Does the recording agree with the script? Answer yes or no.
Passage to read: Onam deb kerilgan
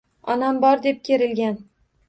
no